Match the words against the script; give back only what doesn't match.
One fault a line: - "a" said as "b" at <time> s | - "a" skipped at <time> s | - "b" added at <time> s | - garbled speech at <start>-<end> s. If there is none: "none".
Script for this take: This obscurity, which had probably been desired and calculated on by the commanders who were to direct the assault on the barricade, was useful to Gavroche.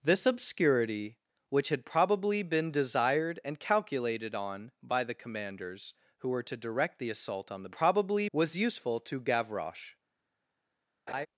- "barricade" said as "probably" at 7.7 s